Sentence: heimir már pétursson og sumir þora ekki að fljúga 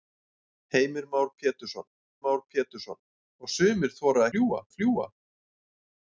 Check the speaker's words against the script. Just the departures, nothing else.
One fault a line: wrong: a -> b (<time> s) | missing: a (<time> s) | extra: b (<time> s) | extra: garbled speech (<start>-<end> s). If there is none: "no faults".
extra: már pétursson (2.2 s)
wrong: ekki -> fljúga (4.3 s)